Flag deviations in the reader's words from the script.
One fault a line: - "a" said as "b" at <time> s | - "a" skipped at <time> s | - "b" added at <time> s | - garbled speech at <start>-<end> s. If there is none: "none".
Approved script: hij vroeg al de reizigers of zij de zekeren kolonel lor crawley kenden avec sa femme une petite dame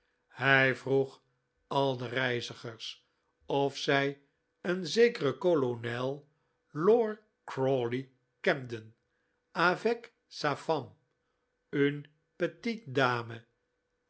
- "de" said as "een" at 4.6 s